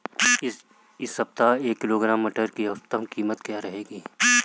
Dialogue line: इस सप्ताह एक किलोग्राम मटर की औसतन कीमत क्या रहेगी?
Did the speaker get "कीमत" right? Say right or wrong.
right